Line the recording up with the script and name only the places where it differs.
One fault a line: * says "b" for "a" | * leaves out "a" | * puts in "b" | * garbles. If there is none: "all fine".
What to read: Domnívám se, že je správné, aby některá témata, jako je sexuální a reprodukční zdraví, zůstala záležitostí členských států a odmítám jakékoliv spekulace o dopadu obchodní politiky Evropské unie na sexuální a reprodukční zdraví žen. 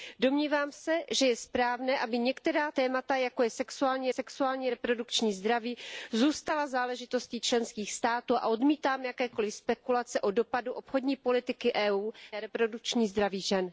* puts in "sexuální"
* leaves out "na sexuální"